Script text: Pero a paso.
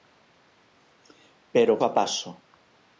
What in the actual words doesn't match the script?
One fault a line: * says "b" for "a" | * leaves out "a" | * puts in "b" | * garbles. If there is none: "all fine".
all fine